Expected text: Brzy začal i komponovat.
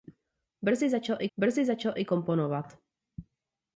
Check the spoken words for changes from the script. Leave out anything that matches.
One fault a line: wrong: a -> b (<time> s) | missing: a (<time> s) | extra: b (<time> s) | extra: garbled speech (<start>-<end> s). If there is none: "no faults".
extra: brzy začal i (1.4 s)